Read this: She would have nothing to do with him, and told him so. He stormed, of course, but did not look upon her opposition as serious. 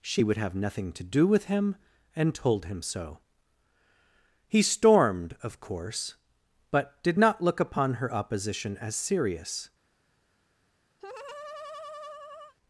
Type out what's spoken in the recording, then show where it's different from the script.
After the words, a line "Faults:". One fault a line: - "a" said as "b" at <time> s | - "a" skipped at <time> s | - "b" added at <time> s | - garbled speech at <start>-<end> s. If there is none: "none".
She would have nothing to do with him, and told him so. He stormed, of course, but did not look upon her opposition as serious.
Faults:
none